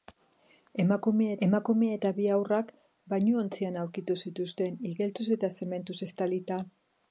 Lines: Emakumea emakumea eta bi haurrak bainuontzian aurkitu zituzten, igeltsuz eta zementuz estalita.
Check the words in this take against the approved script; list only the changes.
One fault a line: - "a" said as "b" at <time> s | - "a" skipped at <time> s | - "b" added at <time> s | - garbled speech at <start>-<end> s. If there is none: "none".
none